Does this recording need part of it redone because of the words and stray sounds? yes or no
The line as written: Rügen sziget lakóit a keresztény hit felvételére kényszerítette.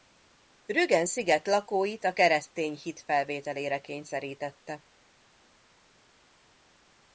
no